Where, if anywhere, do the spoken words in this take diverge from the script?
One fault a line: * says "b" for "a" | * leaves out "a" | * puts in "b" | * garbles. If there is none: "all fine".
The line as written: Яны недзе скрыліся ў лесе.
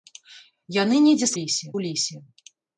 * says "лесе" for "скрыліся"